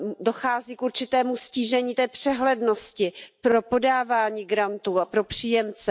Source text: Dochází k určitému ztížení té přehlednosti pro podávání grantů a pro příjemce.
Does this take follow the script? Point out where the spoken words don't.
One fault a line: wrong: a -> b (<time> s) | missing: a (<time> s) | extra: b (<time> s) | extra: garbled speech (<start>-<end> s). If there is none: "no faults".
no faults